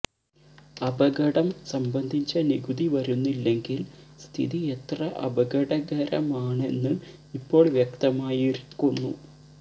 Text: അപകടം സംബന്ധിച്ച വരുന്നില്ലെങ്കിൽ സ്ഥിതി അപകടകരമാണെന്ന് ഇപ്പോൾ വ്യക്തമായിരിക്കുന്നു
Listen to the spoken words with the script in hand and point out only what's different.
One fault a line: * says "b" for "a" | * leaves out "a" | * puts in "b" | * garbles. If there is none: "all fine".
* puts in "നികുതി"
* puts in "എത്ര"